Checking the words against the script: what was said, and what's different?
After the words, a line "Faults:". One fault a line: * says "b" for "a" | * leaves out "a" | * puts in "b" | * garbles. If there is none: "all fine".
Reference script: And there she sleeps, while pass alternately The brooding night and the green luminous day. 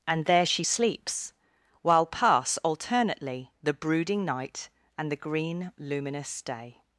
And there she sleeps, while pass alternately The brooding night and the green luminous day.
Faults:
all fine